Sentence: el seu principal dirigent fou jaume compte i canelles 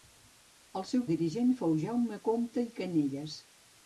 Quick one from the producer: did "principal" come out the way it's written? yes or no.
no